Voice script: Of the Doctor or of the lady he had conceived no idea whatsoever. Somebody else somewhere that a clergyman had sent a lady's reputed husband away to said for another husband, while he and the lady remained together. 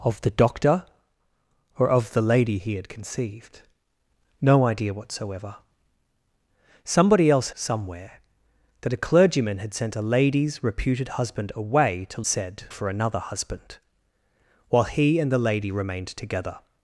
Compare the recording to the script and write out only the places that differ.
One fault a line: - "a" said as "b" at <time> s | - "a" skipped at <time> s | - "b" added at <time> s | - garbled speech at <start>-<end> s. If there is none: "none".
none